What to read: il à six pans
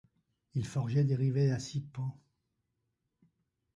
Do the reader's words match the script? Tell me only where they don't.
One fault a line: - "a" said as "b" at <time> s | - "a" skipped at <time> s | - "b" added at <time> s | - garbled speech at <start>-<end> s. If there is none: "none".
- "forgeait des rivets" added at 0.7 s